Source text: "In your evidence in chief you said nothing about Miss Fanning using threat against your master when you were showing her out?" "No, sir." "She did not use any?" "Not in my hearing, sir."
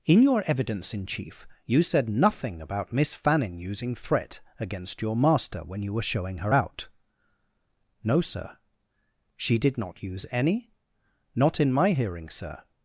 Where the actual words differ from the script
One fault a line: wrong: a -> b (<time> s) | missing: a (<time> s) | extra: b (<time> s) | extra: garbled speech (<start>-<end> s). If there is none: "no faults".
no faults